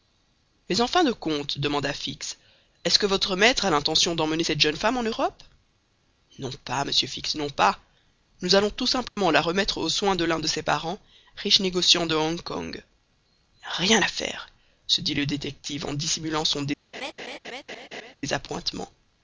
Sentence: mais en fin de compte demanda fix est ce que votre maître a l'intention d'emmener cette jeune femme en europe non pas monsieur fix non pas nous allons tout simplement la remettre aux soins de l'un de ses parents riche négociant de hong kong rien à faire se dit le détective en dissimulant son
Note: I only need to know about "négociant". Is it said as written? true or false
true